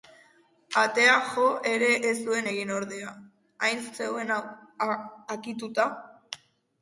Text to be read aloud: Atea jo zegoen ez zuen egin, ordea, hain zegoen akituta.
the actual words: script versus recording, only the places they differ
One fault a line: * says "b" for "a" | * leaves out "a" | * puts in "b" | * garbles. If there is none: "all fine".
* says "ere" for "zegoen"